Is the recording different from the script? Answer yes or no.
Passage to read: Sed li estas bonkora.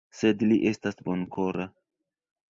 no